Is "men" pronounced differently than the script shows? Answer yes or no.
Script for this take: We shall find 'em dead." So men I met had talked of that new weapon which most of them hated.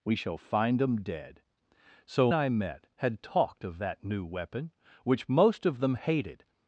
yes